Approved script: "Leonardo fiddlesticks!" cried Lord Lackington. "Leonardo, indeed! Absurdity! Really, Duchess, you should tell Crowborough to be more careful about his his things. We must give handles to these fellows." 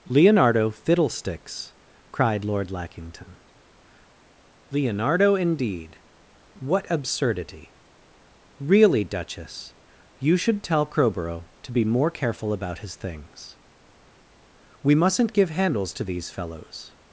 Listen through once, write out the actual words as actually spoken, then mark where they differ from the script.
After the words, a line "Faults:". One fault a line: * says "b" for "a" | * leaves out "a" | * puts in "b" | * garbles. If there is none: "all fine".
"Leonardo fiddlesticks!" cried Lord Lackington. "Leonardo, indeed! What absurdity! Really, Duchess, you should tell Crowborough to be more careful about his things. We mustn't give handles to these fellows."
Faults:
* puts in "What"
* leaves out "his"
* says "mustn't" for "must"